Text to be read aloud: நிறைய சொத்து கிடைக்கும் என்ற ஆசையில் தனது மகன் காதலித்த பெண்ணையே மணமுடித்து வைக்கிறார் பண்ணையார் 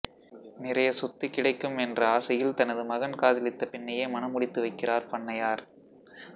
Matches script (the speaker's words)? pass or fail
pass